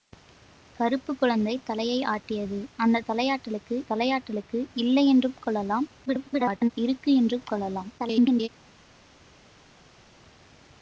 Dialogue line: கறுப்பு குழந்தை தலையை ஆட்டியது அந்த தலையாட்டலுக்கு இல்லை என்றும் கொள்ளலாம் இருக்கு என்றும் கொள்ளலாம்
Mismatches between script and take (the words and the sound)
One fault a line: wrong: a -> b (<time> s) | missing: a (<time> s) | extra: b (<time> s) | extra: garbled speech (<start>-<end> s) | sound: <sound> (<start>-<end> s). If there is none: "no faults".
extra: தலையாட்டலுக்கு (3.9 s)
extra: garbled speech (6.1-6.7 s)
extra: garbled speech (8.0-8.5 s)